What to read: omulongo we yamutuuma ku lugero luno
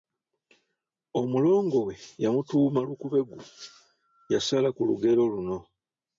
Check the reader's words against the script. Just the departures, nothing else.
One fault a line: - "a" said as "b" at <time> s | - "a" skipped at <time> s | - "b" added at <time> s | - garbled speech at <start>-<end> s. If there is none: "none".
- "lukubeggu yasala" added at 2.9 s